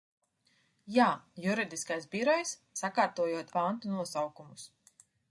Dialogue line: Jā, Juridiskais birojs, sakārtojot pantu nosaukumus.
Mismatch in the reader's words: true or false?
false